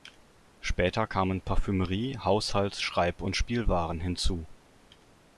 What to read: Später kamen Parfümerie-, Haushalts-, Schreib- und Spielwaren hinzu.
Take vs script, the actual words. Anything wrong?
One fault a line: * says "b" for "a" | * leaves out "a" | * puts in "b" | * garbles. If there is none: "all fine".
all fine